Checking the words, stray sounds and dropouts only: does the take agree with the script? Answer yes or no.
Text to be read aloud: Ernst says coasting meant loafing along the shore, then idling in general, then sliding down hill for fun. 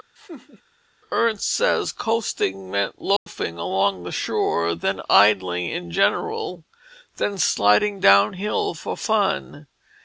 no